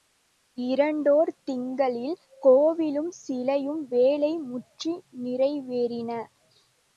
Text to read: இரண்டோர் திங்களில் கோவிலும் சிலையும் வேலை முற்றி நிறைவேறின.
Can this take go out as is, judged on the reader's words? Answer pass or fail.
pass